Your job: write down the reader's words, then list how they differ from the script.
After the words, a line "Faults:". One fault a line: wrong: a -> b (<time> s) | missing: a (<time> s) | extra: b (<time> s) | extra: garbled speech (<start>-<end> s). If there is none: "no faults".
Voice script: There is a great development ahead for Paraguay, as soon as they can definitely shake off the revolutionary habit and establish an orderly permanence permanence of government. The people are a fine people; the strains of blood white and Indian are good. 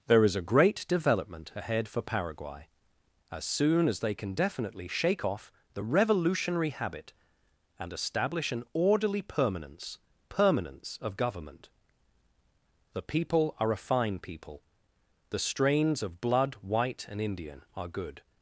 There is a great development ahead for Paraguay, as soon as they can definitely shake off the revolutionary habit and establish an orderly permanence permanence of government. The people are a fine people; the strains of blood white and Indian are good.
Faults:
no faults